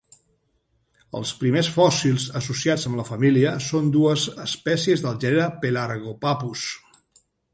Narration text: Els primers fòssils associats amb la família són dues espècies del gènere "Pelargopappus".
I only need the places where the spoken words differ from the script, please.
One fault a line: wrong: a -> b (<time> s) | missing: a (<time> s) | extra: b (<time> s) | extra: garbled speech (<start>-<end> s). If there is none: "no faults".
no faults